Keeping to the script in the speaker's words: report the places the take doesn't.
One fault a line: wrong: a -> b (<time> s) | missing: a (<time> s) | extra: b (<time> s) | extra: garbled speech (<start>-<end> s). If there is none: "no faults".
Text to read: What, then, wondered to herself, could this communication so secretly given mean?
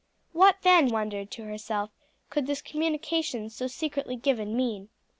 no faults